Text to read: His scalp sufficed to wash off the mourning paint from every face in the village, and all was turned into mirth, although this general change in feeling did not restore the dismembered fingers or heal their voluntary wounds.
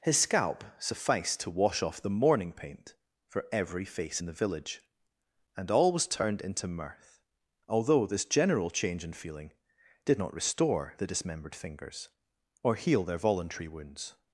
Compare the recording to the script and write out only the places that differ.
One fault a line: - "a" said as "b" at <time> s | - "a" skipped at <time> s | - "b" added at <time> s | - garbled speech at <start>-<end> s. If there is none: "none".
- "from" said as "for" at 3.3 s